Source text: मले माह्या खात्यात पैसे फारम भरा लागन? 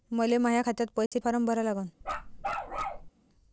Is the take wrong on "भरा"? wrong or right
right